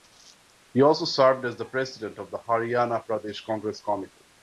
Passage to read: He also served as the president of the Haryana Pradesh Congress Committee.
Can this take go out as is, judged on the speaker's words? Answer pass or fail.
pass